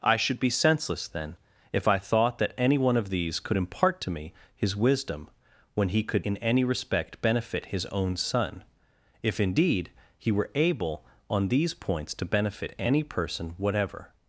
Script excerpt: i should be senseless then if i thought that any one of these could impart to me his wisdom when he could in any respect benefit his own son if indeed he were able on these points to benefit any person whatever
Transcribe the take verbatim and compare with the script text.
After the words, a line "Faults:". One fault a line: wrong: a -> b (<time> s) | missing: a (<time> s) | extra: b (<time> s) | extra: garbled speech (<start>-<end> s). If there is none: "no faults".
i should be senseless then if i thought that any one of these could impart to me his wisdom when he could in any respect benefit his own son if indeed he were able on these points to benefit any person whatever
Faults:
no faults